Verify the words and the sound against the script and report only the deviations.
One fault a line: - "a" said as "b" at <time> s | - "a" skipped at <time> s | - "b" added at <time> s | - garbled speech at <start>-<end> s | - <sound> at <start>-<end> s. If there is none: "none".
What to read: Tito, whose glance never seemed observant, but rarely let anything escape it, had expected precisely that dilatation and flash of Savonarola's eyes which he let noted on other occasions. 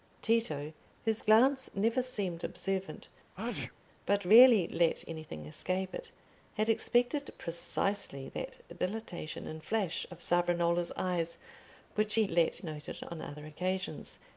- sneeze at 3.3-3.7 s